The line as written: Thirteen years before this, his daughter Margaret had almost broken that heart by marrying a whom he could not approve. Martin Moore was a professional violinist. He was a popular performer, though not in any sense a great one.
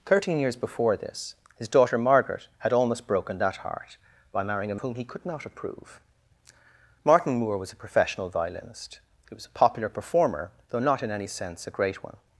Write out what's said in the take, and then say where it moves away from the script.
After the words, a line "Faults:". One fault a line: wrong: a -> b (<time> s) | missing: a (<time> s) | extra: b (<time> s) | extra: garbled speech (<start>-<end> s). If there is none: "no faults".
Thirteen years before this, his daughter Margaret had almost broken that heart by marrying a whom he could not approve. Martin Moore was a professional violinist. He was a popular performer, though not in any sense a great one.
Faults:
no faults